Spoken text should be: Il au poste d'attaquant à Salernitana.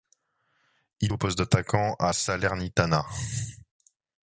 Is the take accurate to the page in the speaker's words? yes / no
yes